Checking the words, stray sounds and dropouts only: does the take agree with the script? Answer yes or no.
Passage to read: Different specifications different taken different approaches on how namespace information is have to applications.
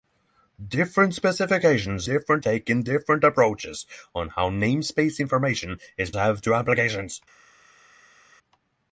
yes